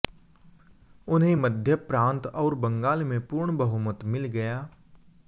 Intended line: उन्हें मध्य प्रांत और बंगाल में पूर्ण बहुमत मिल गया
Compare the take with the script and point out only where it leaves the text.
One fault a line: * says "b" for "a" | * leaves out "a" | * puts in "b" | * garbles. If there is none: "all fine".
all fine